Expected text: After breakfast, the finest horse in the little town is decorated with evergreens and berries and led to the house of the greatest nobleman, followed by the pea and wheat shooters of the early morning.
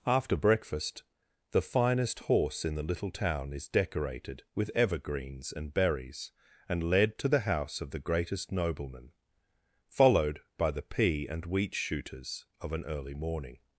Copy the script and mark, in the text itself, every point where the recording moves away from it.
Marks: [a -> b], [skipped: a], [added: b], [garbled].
After breakfast, the finest horse in the little town is decorated with evergreens and berries and led to the house of the greatest nobleman, followed by the pea and wheat shooters of [the -> an] early morning.